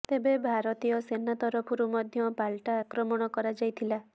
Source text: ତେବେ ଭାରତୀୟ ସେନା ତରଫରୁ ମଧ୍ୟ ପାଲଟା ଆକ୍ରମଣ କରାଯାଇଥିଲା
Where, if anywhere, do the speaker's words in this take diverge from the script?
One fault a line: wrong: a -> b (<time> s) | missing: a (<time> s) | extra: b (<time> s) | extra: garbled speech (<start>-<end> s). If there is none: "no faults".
no faults